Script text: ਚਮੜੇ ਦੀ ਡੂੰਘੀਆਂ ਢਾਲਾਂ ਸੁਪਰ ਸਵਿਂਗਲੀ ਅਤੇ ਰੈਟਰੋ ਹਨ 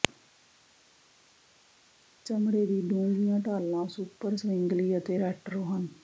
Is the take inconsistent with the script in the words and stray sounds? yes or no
no